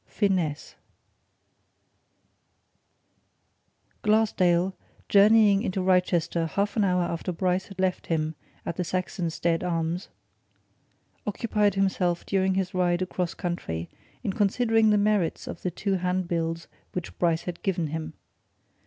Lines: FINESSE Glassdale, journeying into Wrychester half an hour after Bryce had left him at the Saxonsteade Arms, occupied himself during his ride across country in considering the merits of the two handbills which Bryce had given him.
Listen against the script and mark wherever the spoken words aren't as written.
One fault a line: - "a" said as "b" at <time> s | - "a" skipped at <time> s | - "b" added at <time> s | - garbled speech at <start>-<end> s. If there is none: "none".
none